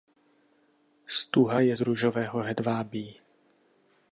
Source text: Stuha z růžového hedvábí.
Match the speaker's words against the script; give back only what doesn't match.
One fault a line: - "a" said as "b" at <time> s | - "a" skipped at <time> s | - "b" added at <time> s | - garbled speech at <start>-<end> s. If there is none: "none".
- "je" added at 1.6 s